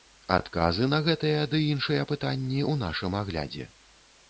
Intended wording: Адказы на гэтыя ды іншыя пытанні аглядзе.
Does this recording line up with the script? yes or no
no